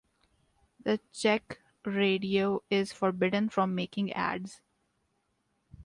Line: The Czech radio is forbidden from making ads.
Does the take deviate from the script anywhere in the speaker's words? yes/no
no